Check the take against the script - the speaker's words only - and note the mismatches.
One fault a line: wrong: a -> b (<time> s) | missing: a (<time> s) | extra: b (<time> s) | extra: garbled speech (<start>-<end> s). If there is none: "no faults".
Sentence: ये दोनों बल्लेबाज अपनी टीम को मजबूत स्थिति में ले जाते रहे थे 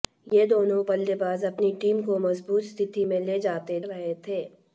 no faults